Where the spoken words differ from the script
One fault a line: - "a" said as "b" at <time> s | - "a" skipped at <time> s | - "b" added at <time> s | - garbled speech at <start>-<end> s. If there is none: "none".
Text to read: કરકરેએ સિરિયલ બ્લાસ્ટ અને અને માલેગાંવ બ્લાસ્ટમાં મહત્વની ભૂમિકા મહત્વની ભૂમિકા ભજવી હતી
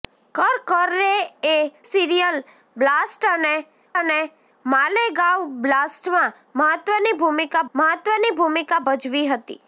none